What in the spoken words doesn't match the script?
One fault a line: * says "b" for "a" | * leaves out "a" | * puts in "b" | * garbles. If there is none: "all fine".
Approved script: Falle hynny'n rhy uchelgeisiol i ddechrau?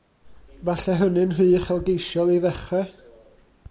all fine